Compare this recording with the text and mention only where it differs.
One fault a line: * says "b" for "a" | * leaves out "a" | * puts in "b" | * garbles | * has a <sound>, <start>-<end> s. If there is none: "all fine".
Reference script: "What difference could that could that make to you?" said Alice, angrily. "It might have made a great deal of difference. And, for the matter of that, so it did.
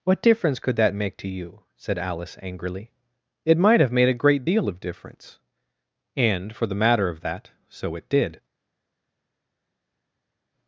* leaves out "could that"